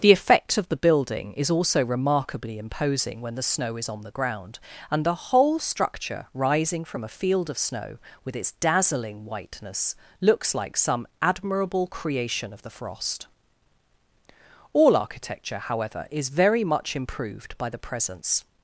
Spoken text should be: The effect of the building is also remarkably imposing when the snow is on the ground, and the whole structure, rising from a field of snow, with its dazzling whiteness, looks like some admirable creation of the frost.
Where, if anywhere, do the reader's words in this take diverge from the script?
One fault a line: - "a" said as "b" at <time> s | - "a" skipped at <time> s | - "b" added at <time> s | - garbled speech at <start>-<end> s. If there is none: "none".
- "All architecture however is very much improved by the presence" added at 14.7 s